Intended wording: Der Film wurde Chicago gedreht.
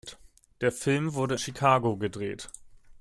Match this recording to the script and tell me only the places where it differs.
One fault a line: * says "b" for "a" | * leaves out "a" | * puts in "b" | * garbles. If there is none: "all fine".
all fine